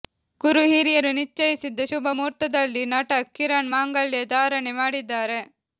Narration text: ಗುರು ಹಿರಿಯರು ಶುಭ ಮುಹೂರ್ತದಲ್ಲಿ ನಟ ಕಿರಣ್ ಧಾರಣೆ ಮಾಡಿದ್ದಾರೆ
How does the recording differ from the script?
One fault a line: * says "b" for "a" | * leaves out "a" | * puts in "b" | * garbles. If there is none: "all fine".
* puts in "ನಿಶ್ಚಯಿಸಿದ"
* puts in "ಮಾಂಗಲ್ಯ"